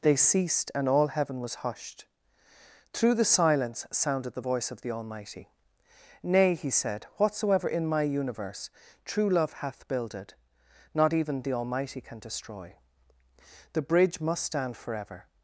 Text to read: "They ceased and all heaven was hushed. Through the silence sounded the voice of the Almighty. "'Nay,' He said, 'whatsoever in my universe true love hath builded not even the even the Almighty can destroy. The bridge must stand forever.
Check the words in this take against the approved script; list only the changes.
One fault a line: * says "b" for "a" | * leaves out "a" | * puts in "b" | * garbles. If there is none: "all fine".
* leaves out "even the"